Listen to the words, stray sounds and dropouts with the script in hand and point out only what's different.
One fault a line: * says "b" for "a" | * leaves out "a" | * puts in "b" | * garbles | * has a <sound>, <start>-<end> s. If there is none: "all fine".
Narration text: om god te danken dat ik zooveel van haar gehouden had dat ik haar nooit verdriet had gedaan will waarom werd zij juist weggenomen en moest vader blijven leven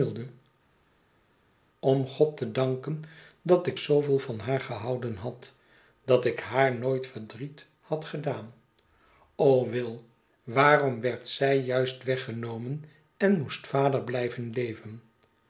all fine